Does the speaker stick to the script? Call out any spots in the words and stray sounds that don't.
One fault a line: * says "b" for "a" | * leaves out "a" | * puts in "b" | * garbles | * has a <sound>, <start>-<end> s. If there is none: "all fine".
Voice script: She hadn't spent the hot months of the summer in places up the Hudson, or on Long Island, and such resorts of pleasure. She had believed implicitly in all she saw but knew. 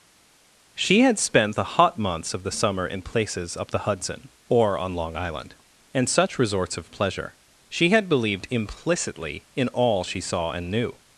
* says "had" for "hadn't"
* says "and" for "but"